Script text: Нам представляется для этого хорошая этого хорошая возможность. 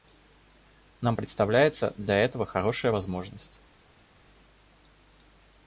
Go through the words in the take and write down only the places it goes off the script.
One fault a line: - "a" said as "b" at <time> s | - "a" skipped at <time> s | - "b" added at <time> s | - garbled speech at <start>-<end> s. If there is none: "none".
- "этого хорошая" skipped at 2.9 s